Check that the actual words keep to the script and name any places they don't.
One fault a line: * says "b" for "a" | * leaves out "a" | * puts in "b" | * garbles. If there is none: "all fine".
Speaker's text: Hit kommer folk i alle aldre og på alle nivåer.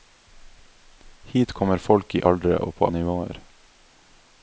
* leaves out "alle"
* leaves out "alle"